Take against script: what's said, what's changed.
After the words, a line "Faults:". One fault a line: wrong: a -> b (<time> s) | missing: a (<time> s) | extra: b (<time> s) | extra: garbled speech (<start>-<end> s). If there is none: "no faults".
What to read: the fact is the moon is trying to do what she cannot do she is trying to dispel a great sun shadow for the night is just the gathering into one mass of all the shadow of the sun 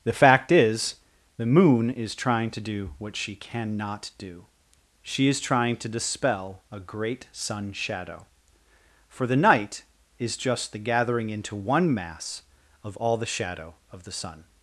the fact is the moon is trying to do what she cannot do she is trying to dispel a great sun shadow for the night is just the gathering into one mass of all the shadow of the sun
Faults:
no faults